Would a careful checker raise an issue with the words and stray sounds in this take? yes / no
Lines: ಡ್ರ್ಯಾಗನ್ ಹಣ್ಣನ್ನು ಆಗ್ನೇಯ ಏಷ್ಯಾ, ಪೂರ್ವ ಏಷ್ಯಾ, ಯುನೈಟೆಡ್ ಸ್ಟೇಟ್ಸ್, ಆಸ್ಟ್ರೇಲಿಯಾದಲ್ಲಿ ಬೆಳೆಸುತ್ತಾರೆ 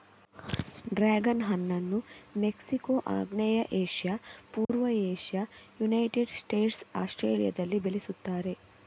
yes